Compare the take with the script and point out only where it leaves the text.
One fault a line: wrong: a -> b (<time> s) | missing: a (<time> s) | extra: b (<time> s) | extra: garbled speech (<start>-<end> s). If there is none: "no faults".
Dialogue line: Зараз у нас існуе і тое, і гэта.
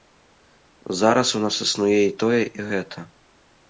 no faults